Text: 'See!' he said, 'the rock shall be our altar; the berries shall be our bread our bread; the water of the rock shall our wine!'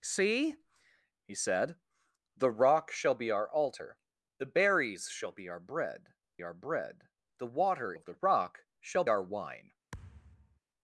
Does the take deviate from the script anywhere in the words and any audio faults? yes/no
yes